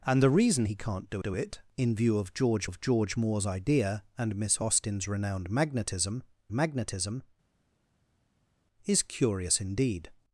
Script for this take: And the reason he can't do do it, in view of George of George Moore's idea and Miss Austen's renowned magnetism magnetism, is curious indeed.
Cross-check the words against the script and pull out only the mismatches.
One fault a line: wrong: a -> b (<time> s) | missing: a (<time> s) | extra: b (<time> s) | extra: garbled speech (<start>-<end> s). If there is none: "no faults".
no faults